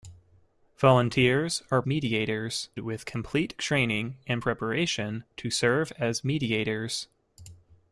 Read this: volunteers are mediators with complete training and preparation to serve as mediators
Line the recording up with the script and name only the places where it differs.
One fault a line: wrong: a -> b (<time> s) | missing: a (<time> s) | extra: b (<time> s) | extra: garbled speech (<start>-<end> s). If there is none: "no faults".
no faults